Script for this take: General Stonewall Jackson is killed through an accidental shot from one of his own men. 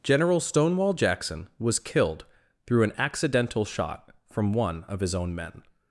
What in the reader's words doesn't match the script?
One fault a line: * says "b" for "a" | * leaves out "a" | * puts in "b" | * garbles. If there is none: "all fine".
* says "was" for "is"